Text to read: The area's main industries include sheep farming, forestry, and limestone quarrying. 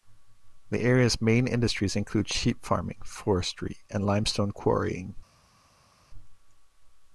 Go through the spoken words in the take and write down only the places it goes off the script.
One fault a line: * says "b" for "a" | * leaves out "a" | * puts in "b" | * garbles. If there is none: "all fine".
all fine